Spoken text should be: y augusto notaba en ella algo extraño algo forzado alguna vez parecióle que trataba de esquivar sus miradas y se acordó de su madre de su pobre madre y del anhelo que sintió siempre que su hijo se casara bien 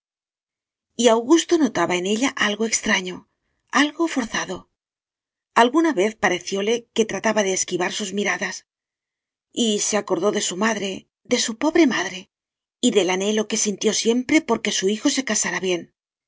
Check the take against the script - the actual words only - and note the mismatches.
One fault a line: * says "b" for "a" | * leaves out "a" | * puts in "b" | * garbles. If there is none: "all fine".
* puts in "por"